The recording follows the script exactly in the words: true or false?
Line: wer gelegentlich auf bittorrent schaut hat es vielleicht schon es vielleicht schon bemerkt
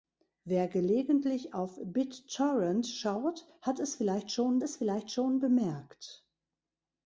true